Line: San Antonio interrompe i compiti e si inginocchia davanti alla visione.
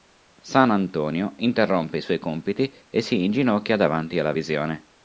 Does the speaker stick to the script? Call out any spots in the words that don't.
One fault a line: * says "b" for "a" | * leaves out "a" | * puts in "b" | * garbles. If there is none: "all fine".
* puts in "suoi"